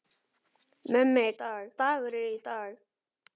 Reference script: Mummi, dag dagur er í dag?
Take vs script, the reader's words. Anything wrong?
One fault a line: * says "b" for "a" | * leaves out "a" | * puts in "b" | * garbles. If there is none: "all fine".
all fine